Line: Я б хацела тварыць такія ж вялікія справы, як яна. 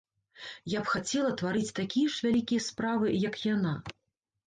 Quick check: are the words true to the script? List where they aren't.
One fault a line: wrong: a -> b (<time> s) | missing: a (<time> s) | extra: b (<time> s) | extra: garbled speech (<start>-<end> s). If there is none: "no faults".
no faults